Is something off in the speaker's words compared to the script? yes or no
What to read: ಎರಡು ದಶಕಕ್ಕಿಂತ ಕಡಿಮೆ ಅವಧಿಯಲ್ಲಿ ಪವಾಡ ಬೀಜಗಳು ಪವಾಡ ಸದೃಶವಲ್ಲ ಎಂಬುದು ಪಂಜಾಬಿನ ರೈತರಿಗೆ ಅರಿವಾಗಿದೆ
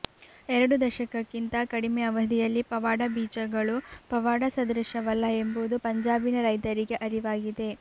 no